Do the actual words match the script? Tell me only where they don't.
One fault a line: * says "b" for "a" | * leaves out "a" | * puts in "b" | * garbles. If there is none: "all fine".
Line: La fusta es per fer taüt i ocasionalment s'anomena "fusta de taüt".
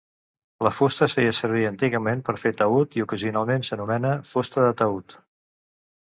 * puts in "feia servir antigament"